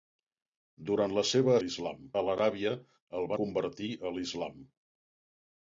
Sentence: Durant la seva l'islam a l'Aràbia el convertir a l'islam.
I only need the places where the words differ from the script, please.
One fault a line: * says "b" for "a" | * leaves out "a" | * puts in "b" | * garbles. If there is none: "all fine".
all fine